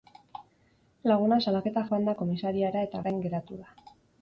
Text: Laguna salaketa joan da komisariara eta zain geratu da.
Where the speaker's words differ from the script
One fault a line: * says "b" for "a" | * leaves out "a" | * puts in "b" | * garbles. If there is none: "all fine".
all fine